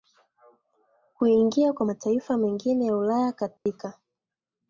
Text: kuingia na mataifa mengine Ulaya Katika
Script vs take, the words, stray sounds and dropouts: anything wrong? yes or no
yes